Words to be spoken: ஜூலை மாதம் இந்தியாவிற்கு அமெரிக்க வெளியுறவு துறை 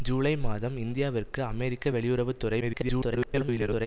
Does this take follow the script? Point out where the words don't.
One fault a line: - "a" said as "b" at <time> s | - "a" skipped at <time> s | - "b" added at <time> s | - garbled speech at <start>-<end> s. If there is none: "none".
- garbled speech at 2.6-3.9 s